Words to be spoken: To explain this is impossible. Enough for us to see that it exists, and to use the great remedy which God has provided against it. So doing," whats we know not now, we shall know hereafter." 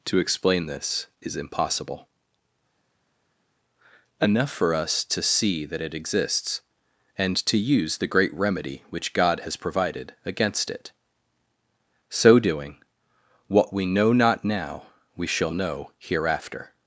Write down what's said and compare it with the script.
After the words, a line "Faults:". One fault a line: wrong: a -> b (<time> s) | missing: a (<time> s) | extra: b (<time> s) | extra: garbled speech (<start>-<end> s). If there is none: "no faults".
To explain this is impossible. Enough for us to see that it exists, and to use the great remedy which God has provided against it. So doing," what we know not now, we shall know hereafter."
Faults:
wrong: whats -> what (13.5 s)